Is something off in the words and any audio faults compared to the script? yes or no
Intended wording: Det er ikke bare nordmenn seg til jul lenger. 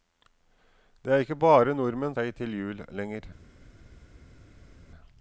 no